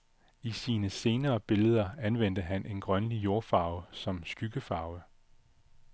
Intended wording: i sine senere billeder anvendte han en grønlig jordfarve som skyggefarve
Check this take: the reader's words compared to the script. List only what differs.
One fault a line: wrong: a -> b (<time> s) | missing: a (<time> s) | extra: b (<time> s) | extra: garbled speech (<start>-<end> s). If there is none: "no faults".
no faults